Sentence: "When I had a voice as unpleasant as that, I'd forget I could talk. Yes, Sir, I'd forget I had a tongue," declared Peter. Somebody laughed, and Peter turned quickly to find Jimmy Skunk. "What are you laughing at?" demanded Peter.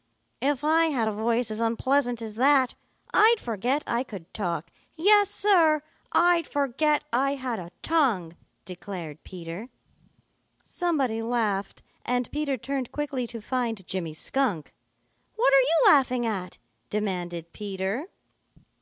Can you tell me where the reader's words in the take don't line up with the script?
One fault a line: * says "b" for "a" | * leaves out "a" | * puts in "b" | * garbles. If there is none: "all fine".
* says "If" for "When"